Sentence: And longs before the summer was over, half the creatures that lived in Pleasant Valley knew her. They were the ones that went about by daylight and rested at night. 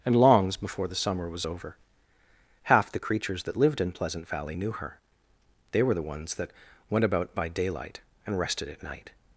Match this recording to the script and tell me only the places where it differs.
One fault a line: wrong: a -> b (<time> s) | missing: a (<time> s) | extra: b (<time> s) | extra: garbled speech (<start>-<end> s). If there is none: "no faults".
no faults